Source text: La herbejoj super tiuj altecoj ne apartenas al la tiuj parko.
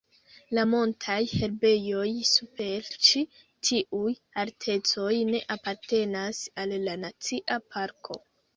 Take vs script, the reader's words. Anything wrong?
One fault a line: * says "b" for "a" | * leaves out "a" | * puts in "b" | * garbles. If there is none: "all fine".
* puts in "montaj"
* puts in "ĉi"
* says "nacia" for "tiuj"